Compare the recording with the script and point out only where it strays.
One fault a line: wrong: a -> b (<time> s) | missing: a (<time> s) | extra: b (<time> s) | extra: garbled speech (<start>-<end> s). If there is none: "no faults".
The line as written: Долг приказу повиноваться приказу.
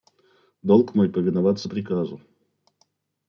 wrong: приказу -> мой (0.9 s)